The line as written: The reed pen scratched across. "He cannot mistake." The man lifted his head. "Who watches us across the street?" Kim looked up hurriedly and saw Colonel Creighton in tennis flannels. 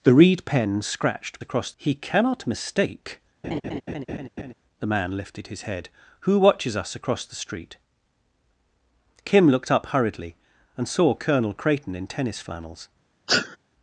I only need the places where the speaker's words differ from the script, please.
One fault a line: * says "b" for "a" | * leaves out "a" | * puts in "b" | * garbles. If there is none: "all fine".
all fine